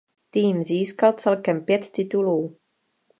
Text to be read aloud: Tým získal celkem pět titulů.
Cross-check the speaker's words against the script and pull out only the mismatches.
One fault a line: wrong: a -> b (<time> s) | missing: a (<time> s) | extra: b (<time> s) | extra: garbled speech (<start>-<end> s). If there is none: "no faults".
no faults